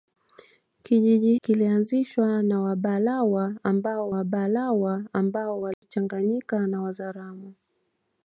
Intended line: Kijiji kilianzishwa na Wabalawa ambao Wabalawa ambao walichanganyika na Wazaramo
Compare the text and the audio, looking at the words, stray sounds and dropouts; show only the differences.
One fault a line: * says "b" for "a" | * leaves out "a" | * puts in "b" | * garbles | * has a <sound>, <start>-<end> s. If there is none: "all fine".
* has a dropout, 5.7-5.8 s